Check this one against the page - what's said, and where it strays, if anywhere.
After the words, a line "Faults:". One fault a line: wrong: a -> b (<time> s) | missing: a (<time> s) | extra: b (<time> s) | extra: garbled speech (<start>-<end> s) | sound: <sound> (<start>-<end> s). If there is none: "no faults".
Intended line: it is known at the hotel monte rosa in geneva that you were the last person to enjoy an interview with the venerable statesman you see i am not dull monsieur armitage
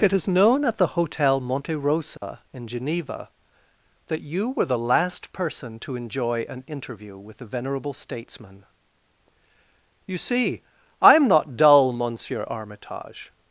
it is known at the hotel monte rosa in geneva that you were the last person to enjoy an interview with the venerable statesman you see i am not dull monsieur armitage
Faults:
sound: dropout (2.2-2.2 s)